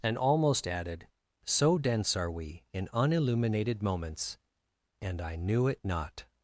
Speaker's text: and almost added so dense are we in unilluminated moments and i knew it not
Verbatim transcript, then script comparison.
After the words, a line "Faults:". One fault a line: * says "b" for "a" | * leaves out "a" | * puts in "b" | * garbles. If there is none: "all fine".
and almost added so dense are we in unilluminated moments and i knew it not
Faults:
all fine